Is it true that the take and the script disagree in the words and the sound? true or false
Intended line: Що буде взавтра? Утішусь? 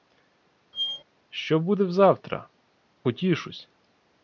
true